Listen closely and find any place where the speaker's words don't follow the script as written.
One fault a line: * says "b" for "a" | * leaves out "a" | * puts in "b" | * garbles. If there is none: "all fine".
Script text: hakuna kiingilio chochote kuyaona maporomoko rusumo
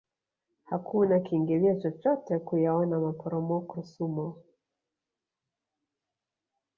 all fine